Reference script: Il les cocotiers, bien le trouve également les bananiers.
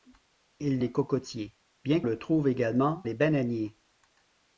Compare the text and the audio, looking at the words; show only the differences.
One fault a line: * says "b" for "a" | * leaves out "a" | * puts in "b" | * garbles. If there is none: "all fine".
all fine